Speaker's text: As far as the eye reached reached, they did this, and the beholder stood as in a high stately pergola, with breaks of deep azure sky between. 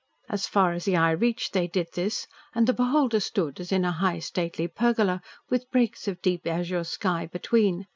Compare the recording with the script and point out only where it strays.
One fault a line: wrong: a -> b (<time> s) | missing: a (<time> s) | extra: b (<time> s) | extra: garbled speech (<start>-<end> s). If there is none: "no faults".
missing: reached (1.5 s)